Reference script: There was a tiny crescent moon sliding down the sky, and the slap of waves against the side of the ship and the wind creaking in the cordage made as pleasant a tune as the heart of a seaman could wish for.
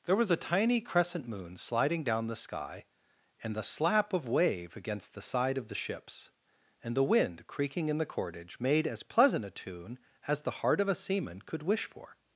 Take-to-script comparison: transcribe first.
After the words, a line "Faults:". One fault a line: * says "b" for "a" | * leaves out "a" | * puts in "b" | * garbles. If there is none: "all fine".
There was a tiny crescent moon sliding down the sky, and the slap of wave against the side of the ships and the wind creaking in the cordage made as pleasant a tune as the heart of a seaman could wish for.
Faults:
* says "wave" for "waves"
* says "ships" for "ship"